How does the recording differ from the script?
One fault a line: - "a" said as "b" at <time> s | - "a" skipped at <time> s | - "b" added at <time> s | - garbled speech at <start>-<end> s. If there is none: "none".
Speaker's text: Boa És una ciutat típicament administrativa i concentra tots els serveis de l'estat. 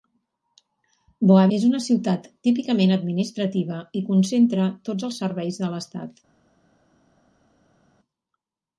none